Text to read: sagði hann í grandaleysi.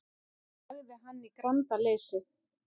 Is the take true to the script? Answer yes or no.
yes